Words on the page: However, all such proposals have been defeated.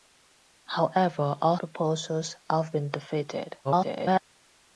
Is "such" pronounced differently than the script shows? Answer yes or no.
yes